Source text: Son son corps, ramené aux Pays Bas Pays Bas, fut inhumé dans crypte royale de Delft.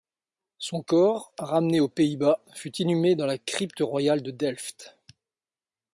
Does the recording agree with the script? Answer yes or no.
no